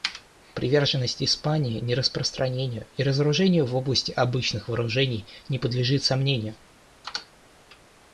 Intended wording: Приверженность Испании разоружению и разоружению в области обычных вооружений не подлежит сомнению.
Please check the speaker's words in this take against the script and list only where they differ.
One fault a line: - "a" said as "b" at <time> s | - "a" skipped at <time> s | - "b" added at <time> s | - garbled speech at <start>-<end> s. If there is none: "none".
- "разоружению" said as "нераспространению" at 1.8 s